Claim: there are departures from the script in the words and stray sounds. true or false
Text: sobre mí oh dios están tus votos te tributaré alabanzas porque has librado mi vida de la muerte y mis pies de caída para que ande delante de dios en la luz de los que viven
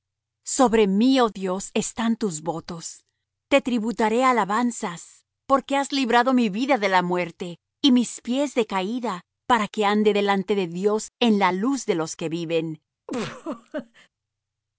true